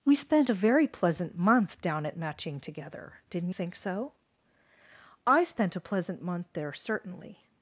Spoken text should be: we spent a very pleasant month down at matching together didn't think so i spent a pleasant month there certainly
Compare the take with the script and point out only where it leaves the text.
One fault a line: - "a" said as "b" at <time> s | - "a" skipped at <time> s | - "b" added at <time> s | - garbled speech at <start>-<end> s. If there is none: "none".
none